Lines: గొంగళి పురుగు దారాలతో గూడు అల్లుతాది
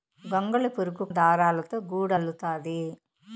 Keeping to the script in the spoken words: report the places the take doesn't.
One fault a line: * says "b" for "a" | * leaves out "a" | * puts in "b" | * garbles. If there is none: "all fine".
all fine